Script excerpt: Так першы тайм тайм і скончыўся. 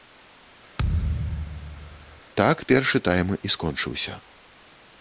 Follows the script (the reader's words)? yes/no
no